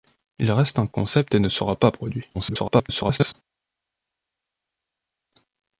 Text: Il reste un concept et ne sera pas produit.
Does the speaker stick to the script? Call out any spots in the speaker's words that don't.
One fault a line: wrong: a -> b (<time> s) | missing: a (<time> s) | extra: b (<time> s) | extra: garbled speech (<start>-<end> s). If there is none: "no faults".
extra: garbled speech (2.3-3.3 s)